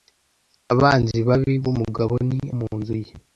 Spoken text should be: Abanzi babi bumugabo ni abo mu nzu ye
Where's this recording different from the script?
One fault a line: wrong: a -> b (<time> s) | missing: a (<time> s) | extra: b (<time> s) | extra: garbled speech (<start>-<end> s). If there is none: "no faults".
missing: abo (2.4 s)